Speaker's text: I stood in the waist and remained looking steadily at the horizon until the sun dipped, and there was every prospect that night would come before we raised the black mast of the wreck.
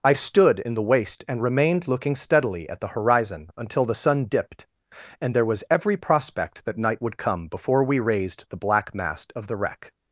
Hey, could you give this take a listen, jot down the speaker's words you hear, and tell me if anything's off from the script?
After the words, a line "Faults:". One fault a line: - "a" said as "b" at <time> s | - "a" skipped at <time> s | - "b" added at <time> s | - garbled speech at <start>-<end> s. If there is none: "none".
I stood in the waist and remained looking steadily at the horizon until the sun dipped, and there was every prospect that night would come before we raised the black mast of the wreck.
Faults:
none